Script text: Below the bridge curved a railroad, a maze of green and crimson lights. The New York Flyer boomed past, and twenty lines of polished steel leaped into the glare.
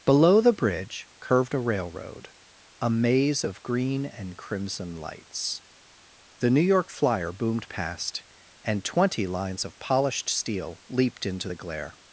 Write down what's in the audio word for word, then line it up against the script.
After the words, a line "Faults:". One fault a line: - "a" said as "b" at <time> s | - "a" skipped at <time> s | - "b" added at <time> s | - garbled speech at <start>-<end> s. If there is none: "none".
Below the bridge curved a railroad, a maze of green and crimson lights. The New York Flyer boomed past, and twenty lines of polished steel leaped into the glare.
Faults:
none